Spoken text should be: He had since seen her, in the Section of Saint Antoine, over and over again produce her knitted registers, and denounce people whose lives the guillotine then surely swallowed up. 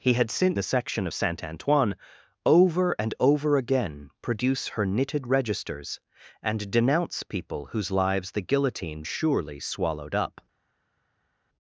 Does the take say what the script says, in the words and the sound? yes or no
no